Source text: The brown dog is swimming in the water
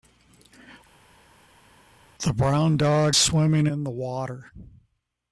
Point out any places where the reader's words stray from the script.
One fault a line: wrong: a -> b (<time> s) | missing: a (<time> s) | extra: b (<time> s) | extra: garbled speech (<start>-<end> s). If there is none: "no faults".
missing: is (3.2 s)